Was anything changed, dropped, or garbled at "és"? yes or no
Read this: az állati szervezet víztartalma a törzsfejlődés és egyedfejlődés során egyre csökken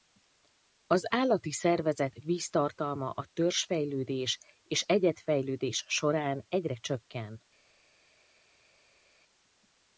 no